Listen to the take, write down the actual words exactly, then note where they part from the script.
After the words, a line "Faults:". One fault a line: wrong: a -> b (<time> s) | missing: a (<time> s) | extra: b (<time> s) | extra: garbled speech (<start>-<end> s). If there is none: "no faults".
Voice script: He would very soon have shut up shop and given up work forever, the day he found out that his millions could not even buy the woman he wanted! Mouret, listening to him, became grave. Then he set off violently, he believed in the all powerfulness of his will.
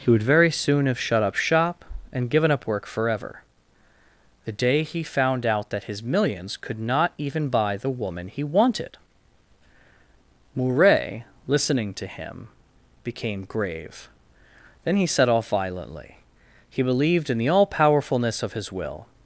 He would very soon have shut up shop and given up work forever, the day he found out that his millions could not even buy the woman he wanted! Mouret, listening to him, became grave. Then he set off violently, he believed in the all powerfulness of his will.
Faults:
no faults